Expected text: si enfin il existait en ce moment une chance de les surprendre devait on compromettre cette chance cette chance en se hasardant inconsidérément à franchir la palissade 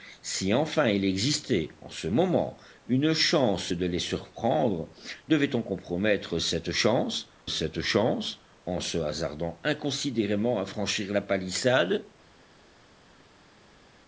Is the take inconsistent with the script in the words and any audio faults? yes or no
no